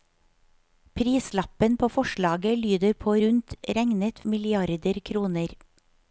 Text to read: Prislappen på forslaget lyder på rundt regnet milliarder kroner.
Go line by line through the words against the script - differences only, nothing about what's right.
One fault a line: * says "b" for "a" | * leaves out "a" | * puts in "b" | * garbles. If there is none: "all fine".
all fine